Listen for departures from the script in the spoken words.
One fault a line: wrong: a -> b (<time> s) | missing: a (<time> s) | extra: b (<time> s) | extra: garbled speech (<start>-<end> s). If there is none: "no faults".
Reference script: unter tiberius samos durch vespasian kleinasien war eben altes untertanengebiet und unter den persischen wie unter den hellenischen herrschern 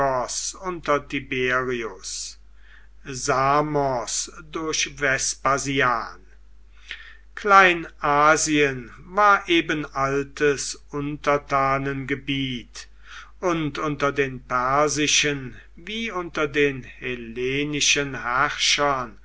no faults